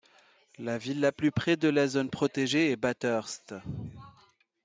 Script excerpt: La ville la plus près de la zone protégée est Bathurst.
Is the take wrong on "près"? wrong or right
right